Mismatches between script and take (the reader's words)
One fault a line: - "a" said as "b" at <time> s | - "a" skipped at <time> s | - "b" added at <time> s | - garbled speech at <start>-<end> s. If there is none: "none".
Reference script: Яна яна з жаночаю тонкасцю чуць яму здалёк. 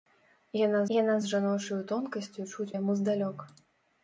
none